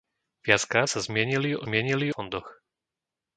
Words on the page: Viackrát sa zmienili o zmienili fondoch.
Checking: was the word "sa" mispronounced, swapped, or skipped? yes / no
no